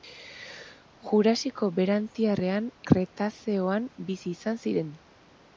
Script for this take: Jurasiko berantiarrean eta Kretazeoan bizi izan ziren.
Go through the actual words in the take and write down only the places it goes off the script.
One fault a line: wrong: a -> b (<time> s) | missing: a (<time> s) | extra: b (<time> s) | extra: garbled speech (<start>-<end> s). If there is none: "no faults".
missing: eta (2.7 s)